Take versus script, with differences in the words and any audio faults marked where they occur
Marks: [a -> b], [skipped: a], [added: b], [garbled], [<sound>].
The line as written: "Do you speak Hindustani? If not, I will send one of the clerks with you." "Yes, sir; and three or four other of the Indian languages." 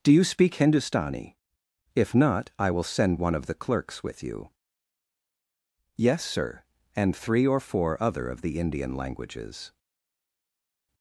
"Do you speak Hindustani? If not, I will send one of the clerks with you." "Yes, sir; and three or four other of the Indian languages."